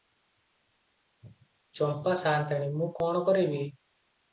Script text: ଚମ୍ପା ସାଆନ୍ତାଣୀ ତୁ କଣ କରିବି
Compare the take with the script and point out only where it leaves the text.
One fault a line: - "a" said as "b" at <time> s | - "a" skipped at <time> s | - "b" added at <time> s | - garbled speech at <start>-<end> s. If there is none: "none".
- "ତୁ" said as "ମୁଁ" at 2.8 s